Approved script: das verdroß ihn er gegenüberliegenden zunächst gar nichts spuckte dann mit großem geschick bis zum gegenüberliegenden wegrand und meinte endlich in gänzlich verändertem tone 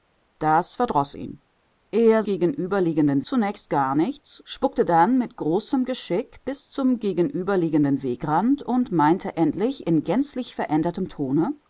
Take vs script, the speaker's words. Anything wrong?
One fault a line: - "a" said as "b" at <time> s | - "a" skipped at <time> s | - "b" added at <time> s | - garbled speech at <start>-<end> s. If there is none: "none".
none